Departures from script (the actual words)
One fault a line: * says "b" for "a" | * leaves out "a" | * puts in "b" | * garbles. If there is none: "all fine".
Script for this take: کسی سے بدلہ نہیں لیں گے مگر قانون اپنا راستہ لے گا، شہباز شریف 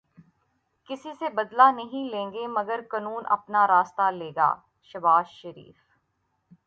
all fine